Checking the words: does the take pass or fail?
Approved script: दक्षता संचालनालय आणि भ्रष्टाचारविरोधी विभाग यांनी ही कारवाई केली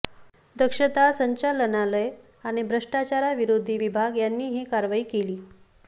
pass